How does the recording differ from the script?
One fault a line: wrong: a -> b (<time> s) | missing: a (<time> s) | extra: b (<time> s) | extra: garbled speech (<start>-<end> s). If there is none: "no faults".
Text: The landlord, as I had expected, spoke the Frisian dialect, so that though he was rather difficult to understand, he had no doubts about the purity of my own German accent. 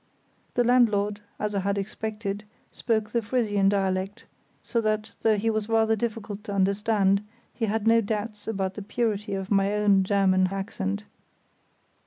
no faults